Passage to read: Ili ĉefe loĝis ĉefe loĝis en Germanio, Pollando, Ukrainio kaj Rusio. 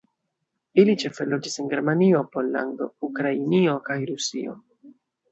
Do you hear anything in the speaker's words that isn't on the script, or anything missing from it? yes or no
yes